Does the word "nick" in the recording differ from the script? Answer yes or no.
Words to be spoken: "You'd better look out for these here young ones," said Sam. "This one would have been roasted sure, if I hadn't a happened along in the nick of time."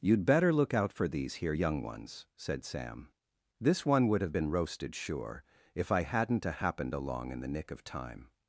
no